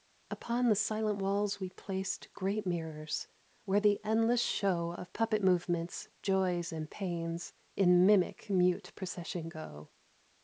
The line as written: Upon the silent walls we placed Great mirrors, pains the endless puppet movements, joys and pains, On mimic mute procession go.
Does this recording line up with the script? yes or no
no